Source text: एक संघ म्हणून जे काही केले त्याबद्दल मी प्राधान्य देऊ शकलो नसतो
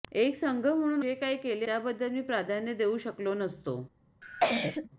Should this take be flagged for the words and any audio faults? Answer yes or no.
yes